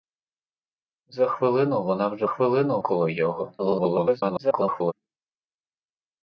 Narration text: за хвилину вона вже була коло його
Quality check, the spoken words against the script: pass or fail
fail